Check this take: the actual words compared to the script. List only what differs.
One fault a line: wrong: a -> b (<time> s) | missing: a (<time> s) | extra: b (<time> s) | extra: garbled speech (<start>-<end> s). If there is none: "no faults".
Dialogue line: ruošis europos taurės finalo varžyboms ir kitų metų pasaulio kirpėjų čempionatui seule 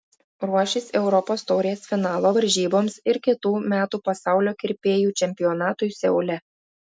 no faults